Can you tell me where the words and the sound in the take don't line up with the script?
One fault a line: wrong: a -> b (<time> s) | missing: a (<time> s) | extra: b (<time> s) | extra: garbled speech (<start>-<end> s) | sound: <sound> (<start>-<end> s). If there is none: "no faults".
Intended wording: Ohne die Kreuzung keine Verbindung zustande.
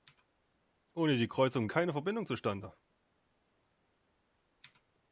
no faults